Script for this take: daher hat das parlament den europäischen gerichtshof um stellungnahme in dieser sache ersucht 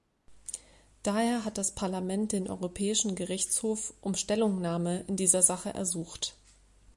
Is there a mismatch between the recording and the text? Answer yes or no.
no